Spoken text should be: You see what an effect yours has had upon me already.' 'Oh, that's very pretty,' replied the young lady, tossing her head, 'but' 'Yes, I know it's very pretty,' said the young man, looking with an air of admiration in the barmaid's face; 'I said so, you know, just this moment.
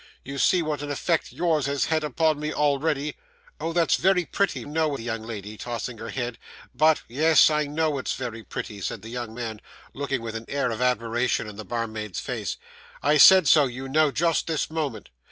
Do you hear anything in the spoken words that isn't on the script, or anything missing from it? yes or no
yes